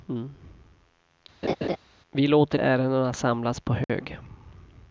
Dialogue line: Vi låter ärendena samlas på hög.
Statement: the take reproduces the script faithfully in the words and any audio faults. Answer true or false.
false